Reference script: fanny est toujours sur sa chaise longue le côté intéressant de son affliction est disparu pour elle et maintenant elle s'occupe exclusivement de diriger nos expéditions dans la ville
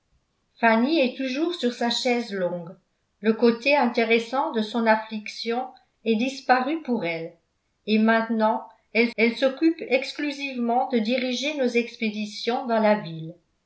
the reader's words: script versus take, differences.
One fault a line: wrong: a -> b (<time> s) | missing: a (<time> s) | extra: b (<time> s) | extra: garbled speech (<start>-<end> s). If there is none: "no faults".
extra: elle (9.2 s)